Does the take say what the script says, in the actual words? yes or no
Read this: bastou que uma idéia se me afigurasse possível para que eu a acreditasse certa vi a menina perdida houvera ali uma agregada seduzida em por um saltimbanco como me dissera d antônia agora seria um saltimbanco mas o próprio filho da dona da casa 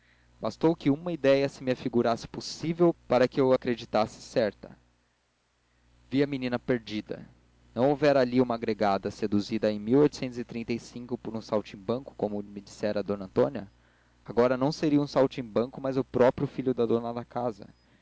no